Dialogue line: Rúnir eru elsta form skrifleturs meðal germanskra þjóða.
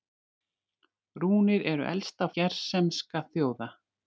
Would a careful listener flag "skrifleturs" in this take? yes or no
yes